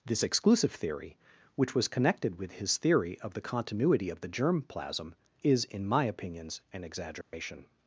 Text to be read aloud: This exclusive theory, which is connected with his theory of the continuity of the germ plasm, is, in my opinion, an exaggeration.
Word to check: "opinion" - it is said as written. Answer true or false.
false